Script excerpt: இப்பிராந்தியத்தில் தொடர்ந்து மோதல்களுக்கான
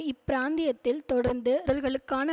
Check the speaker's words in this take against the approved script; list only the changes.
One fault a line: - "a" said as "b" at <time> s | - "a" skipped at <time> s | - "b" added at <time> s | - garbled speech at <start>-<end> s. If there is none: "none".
none